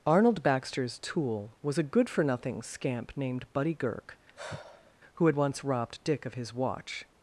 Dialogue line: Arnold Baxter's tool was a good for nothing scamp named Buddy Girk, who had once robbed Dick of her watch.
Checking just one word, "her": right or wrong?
wrong